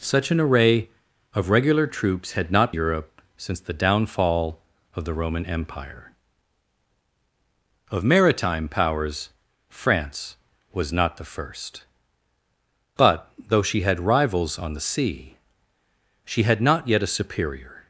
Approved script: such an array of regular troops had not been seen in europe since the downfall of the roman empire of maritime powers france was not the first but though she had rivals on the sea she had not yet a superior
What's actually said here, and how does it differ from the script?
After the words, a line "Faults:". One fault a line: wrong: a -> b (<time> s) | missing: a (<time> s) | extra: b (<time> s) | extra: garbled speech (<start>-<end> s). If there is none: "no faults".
such an array of regular troops had not europe since the downfall of the roman empire of maritime powers france was not the first but though she had rivals on the sea she had not yet a superior
Faults:
missing: been seen in (2.7 s)